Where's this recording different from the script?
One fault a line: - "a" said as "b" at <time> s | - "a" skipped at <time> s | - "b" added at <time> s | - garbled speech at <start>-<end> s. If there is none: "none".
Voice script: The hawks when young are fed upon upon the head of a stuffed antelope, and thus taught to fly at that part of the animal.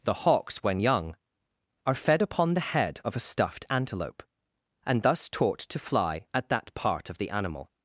- "upon" skipped at 2.5 s